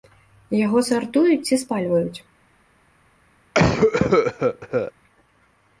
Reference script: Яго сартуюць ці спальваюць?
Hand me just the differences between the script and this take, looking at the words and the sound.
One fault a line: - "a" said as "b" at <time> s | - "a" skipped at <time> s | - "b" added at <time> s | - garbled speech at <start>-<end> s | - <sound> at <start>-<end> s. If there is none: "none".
- cough at 3.5-4.9 s